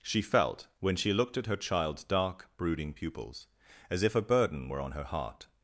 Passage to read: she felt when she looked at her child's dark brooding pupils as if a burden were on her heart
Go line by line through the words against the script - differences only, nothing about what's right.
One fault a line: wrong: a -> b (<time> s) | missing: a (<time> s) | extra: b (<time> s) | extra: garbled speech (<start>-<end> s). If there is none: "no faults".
no faults